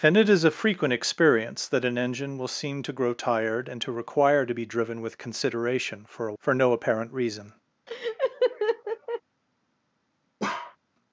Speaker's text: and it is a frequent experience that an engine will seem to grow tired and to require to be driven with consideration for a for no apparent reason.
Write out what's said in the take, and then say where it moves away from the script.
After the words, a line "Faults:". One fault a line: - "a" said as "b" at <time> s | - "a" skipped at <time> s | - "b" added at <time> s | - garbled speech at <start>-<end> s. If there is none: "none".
and it is a frequent experience that an engine will seem to grow tired and to require to be driven with consideration for a for no apparent reason.
Faults:
none